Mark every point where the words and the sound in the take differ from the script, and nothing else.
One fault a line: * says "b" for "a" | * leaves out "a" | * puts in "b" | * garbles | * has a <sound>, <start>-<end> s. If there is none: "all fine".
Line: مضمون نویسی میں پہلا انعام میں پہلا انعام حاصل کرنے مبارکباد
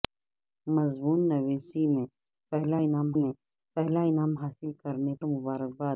all fine